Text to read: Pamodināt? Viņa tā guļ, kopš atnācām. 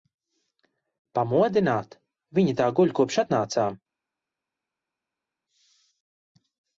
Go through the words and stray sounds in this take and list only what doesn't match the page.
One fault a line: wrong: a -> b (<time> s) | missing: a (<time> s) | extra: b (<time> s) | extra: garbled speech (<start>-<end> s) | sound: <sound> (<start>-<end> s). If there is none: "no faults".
no faults